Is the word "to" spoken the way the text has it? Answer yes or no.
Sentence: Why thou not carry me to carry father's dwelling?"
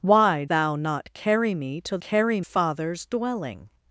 yes